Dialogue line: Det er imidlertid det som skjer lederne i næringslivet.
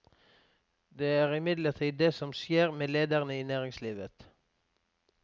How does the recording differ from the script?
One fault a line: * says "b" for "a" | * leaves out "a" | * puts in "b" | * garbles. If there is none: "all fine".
* puts in "med"